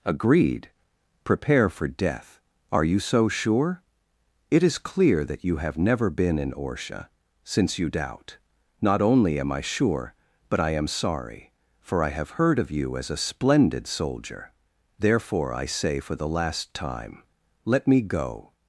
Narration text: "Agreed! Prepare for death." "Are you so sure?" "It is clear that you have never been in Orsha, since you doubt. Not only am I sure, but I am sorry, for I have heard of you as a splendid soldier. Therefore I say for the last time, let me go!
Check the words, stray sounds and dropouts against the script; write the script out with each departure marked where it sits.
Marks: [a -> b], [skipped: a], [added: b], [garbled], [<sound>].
"Agreed! Prepare for death." "Are you so sure?" "It is clear that you have never been in Orsha, since you doubt. Not only am I sure, but I am sorry, for I have heard of you as a splendid soldier. Therefore I say for the last time, let me go!